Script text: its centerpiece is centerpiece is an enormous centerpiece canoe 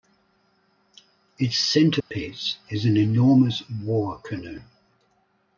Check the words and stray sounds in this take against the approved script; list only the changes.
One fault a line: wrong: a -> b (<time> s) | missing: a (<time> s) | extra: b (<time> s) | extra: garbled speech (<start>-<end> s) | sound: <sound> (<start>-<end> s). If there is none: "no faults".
sound: dropout (2.0-2.1 s)
missing: centerpiece is (2.9 s)
wrong: centerpiece -> war (3.7 s)